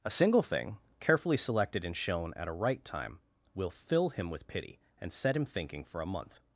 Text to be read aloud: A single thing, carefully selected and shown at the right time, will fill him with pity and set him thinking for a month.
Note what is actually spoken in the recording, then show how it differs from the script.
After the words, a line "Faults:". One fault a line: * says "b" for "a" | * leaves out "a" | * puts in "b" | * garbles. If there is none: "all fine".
A single thing, carefully selected and shown at a right time, will fill him with pity and set him thinking for a month.
Faults:
* says "a" for "the"